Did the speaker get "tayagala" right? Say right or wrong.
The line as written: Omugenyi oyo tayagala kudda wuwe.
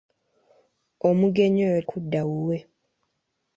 wrong